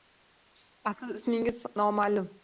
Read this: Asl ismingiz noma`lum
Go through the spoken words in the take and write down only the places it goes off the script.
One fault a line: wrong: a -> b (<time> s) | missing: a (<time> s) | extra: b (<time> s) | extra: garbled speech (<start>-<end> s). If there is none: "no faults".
no faults